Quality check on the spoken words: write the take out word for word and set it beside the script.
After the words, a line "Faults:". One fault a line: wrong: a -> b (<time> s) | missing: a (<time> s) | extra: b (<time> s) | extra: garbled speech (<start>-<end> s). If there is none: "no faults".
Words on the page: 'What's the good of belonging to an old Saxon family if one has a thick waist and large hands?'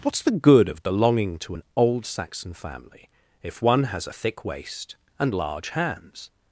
'What's the good of belonging to an old Saxon family if one has a thick waist and large hands?'
Faults:
no faults